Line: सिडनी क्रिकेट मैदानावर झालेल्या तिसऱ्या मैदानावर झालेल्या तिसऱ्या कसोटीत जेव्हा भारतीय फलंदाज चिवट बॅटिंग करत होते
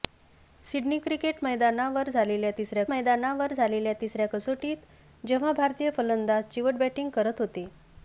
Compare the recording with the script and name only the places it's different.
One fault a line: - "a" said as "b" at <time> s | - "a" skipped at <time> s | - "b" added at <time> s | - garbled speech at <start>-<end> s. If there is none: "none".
none